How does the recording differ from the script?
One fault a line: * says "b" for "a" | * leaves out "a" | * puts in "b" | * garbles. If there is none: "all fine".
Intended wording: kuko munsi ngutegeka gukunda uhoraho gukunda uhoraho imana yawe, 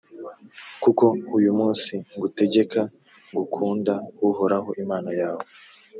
* puts in "uyu"
* leaves out "gukunda uhoraho"